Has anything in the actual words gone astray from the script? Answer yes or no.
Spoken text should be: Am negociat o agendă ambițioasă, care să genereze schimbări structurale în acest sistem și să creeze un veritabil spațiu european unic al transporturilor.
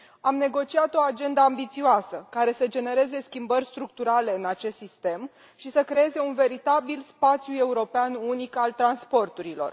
no